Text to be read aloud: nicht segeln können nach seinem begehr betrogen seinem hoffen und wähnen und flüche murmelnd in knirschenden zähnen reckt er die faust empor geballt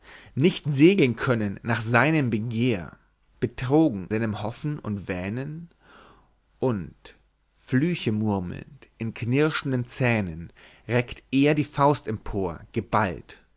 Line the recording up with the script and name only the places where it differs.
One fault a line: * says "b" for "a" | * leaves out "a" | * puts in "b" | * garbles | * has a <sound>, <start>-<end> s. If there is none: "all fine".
all fine